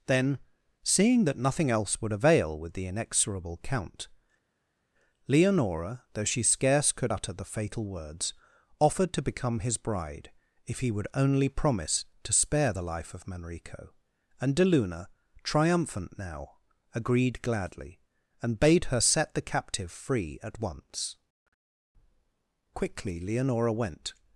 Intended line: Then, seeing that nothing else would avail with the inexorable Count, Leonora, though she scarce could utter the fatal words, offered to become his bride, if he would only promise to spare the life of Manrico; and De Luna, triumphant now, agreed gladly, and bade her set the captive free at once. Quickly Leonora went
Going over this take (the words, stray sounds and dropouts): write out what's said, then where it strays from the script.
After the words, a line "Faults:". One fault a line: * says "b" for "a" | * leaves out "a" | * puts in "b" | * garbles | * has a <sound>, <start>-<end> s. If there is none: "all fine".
Then, seeing that nothing else would avail with the inexorable Count, Leonora, though she scarce could utter the fatal words, offered to become his bride, if he would only promise to spare the life of Manrico; and De Luna, triumphant now, agreed gladly, and bade her set the captive free at once. Quickly Leonora went
Faults:
all fine